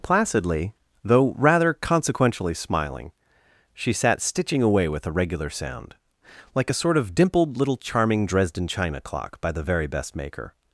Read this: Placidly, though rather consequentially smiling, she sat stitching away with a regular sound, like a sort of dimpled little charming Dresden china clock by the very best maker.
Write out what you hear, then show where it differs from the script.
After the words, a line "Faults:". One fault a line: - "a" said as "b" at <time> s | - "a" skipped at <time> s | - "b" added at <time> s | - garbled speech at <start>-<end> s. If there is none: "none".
Placidly, though rather consequentially smiling, she sat stitching away with a regular sound, like a sort of dimpled little charming Dresden china clock by the very best maker.
Faults:
none